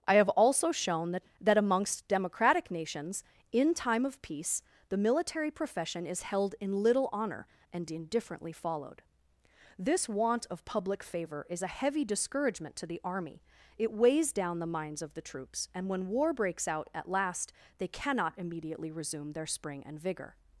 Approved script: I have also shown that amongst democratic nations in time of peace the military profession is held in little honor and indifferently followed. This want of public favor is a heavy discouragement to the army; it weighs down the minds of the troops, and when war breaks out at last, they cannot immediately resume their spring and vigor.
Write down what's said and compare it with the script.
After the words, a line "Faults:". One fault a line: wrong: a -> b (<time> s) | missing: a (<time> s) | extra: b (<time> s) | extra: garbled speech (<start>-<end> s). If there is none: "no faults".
I have also shown that that amongst democratic nations in time of peace the military profession is held in little honor and indifferently followed. This want of public favor is a heavy discouragement to the army; it weighs down the minds of the troops, and when war breaks out at last, they cannot immediately resume their spring and vigor.
Faults:
extra: that (1.4 s)